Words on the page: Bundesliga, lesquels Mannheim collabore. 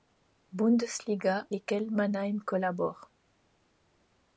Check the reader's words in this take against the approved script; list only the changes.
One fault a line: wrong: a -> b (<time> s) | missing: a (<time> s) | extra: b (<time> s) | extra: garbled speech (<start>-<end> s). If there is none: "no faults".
no faults